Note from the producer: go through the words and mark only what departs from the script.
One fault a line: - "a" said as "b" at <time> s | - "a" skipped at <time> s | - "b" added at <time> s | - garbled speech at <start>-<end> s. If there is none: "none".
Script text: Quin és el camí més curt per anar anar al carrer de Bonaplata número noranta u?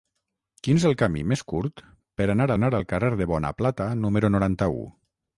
none